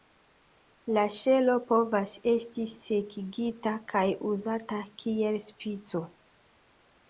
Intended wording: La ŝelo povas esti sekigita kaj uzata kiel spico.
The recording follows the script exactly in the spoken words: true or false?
true